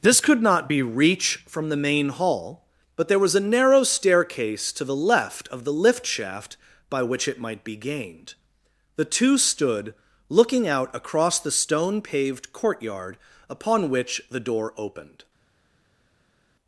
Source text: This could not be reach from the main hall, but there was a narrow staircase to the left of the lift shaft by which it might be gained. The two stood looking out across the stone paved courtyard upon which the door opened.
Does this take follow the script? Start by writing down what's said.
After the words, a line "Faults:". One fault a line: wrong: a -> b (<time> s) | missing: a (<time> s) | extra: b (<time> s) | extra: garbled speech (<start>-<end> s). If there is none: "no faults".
This could not be reach from the main hall, but there was a narrow staircase to the left of the lift shaft by which it might be gained. The two stood looking out across the stone paved courtyard upon which the door opened.
Faults:
no faults